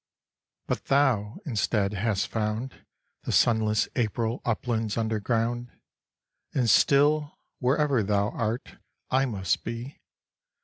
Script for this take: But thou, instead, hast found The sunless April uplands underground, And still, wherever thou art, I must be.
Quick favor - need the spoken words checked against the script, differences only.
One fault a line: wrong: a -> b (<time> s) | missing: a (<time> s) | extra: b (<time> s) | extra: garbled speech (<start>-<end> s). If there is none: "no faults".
no faults